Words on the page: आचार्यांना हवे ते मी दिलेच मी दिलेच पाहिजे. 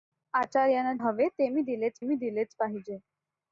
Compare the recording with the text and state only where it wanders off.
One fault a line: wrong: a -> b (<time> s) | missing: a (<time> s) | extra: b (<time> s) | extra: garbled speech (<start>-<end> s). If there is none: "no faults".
no faults